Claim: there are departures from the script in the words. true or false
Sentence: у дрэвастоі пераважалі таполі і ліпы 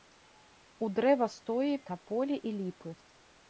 true